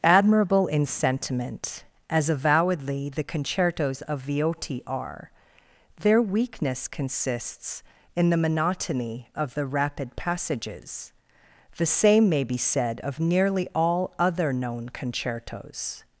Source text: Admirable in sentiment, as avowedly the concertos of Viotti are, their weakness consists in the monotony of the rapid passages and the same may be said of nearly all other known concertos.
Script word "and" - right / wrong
wrong